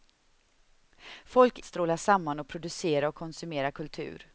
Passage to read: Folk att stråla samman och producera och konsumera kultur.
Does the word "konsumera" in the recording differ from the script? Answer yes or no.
no